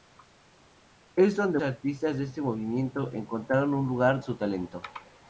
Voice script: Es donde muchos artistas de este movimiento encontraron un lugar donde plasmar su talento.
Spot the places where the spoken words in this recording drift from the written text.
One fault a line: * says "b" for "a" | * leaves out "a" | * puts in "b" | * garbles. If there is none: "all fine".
* leaves out "muchos"
* leaves out "donde plasmar"